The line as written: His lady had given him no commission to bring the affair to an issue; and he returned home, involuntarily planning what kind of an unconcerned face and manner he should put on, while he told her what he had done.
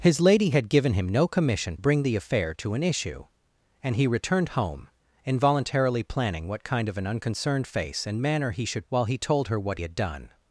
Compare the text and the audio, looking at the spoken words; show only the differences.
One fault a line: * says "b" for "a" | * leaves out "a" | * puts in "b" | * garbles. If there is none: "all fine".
* leaves out "to"
* leaves out "put on"
* leaves out "he"